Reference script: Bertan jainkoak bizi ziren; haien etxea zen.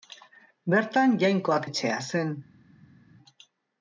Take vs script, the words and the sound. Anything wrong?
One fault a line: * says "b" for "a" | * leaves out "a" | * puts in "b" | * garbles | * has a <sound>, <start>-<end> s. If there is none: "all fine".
* leaves out "bizi ziren haien"